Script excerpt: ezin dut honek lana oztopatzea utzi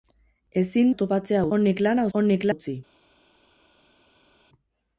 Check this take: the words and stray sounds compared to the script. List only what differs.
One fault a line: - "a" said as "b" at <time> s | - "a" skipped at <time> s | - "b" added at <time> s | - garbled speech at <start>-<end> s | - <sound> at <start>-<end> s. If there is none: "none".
- "dut" said as "oztopatzea" at 0.9 s
- "oztopatzea" said as "honek" at 2.2 s